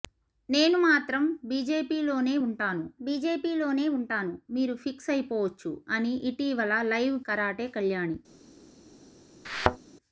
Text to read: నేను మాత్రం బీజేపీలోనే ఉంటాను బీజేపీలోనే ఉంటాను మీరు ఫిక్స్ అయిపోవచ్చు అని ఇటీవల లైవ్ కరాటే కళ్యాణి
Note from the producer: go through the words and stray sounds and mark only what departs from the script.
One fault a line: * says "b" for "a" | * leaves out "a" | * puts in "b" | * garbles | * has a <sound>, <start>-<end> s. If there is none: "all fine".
* has a thud, 9.4-9.8 s